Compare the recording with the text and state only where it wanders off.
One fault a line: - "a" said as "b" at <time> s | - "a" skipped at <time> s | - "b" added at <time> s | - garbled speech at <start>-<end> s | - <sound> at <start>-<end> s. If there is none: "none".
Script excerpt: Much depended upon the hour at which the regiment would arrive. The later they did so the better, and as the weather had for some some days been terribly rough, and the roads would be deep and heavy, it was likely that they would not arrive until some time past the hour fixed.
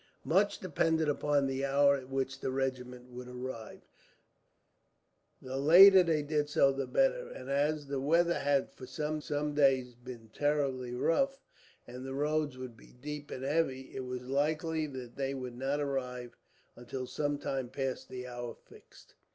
none